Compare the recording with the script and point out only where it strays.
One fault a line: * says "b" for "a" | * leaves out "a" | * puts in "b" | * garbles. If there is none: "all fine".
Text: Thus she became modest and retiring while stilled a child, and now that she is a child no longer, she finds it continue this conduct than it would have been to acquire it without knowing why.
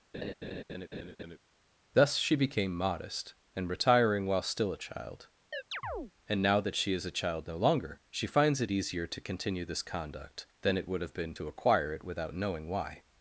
* says "still" for "stilled"
* puts in "easier to"